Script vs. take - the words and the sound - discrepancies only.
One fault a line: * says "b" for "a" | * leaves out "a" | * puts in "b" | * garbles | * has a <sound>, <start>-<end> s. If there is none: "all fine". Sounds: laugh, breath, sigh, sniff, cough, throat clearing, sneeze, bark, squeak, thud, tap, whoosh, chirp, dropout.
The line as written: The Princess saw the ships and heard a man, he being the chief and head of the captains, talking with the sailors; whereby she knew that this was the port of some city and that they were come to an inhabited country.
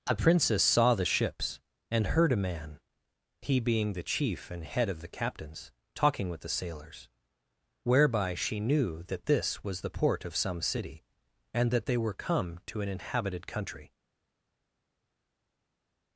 * says "A" for "The"